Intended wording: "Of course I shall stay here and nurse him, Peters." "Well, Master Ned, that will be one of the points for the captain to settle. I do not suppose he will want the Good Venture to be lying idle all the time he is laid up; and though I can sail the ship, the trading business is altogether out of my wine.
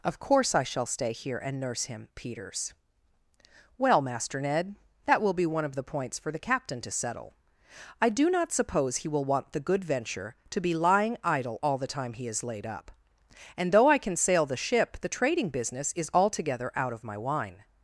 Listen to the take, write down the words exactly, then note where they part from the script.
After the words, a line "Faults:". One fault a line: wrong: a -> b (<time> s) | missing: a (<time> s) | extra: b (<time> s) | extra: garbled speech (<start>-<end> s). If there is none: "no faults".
"Of course I shall stay here and nurse him, Peters." "Well, Master Ned, that will be one of the points for the captain to settle. I do not suppose he will want the Good Venture to be lying idle all the time he is laid up; and though I can sail the ship, the trading business is altogether out of my wine.
Faults:
no faults